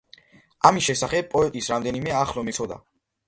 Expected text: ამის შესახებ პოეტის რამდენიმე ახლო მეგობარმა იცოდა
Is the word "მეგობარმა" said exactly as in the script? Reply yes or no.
no